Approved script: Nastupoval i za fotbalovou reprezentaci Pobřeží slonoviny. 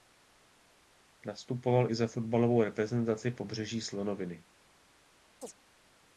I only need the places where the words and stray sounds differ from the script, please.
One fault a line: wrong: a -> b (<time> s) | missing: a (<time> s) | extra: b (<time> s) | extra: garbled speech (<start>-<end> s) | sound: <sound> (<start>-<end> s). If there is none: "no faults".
sound: chirp (5.4-5.5 s)